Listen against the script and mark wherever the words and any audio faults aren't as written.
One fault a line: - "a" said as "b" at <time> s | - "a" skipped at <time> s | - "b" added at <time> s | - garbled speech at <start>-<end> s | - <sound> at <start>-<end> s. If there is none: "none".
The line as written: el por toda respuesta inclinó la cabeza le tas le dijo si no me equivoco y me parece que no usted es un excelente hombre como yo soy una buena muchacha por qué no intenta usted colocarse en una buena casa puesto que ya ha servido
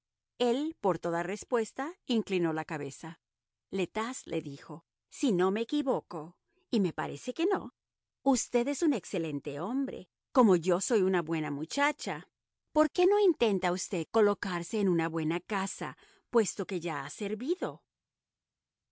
none